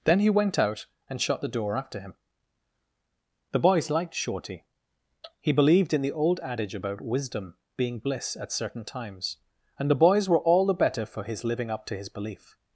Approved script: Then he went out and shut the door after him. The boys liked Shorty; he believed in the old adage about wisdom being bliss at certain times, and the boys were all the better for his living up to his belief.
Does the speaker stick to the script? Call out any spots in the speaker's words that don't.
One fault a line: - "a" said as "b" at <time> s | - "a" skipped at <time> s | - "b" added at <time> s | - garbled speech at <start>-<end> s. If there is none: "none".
none